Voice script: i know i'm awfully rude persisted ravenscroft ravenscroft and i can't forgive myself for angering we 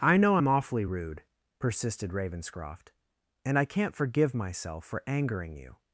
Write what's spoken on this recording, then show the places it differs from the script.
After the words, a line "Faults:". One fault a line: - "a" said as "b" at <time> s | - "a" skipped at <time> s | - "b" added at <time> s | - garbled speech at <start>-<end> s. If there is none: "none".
i know i'm awfully rude persisted ravenscroft and i can't forgive myself for angering you
Faults:
- "ravenscroft" skipped at 2.9 s
- "we" said as "you" at 5.6 s